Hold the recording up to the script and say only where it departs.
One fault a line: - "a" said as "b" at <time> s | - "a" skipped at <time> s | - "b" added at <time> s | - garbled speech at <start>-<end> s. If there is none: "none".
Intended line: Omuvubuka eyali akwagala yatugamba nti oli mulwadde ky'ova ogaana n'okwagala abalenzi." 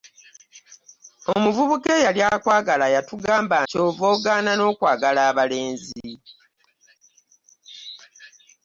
- "nti oli mulwadde" skipped at 3.6 s